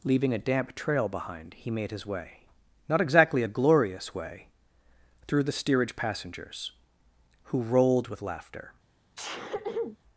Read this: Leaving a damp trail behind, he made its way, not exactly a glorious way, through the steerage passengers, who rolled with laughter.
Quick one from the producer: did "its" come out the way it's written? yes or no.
no